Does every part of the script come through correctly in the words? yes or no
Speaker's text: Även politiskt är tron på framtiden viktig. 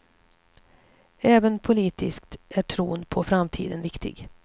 yes